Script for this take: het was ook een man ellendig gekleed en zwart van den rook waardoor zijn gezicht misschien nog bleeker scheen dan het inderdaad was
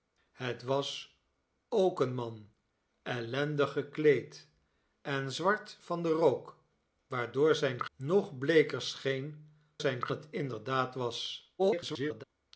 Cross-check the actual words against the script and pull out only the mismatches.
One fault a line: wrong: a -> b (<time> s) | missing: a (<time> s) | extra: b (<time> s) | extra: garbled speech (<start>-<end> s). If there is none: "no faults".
missing: gezicht misschien (7.8 s)
wrong: dan -> zijn (9.8 s)
extra: garbled speech (11.6-12.2 s)